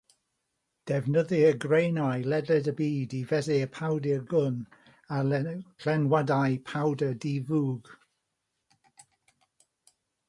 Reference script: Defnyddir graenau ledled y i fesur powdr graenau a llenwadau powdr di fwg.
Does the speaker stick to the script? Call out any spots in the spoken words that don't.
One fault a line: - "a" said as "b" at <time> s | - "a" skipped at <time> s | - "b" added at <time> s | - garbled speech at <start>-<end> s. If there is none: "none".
- "byd" added at 2.8 s
- "graenau" said as "gwn" at 4.3 s